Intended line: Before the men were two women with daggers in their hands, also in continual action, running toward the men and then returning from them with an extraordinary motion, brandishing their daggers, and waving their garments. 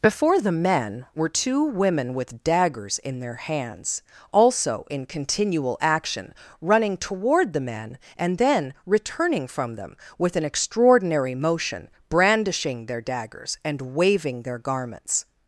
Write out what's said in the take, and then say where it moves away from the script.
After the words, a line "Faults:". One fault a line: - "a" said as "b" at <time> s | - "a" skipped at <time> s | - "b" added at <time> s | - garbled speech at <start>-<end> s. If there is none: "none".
Before the men were two women with daggers in their hands, also in continual action, running toward the men and then returning from them with an extraordinary motion, brandishing their daggers, and waving their garments.
Faults:
none